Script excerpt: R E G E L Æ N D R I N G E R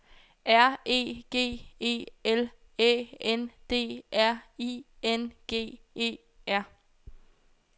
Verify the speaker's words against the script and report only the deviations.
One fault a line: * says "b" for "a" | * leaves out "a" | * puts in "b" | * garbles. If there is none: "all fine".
all fine